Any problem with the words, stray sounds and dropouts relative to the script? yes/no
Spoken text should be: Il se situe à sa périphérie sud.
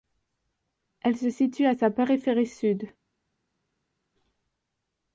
yes